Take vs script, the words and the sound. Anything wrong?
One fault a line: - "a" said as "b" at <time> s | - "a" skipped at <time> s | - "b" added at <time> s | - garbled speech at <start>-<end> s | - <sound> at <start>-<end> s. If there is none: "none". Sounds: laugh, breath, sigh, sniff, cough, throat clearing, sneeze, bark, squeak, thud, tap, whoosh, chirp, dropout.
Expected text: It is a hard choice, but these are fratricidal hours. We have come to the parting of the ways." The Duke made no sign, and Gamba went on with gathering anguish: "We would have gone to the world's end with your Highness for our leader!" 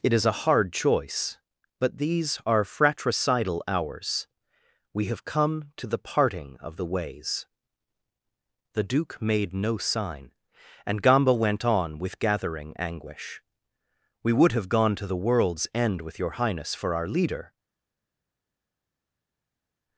none